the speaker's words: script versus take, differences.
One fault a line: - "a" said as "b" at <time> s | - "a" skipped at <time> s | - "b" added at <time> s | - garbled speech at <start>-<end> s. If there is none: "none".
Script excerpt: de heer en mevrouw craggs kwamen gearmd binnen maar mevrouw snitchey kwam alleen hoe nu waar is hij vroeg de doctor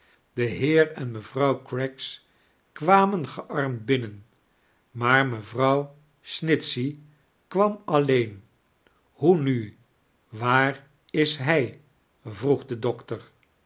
none